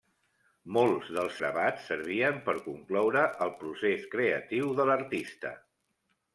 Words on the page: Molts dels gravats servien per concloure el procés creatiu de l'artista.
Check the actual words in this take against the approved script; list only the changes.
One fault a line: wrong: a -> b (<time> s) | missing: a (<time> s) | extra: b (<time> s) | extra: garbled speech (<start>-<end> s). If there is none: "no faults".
no faults